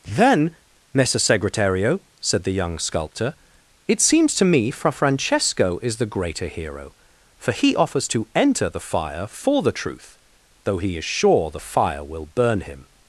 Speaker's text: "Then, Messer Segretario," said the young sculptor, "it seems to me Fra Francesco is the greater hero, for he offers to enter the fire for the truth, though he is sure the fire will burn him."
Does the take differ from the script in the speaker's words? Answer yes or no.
no